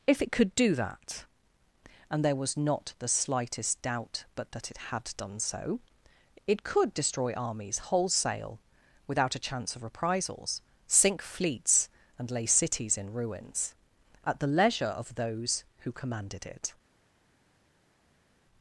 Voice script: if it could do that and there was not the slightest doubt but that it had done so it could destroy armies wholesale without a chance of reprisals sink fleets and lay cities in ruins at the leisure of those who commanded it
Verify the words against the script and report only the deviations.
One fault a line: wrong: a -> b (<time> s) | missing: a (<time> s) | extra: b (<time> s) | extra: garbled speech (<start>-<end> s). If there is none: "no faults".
no faults